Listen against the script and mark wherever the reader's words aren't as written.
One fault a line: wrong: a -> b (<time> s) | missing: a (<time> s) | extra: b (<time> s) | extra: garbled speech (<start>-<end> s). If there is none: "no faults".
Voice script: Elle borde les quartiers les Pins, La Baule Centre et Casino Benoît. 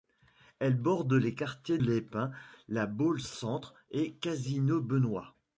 no faults